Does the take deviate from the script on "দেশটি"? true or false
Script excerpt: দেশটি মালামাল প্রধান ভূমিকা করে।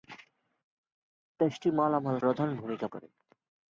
false